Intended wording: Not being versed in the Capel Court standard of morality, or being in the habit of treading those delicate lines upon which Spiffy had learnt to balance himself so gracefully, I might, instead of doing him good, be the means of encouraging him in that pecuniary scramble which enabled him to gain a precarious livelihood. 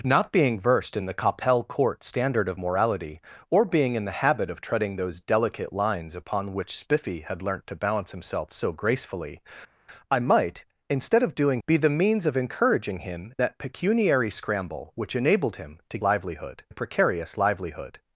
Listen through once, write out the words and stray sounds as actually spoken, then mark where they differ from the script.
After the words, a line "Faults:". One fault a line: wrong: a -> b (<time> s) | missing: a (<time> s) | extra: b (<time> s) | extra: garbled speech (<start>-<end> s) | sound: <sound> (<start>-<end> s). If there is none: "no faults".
Not being versed in the Capel Court standard of morality, or being in the habit of treading those delicate lines upon which Spiffy had learnt to balance himself so gracefully, I might, instead of doing be the means of encouraging him that pecuniary scramble which enabled him to livelihood a precarious livelihood.
Faults:
missing: him good (11.6 s)
missing: in (13.3 s)
wrong: gain -> livelihood (16.0 s)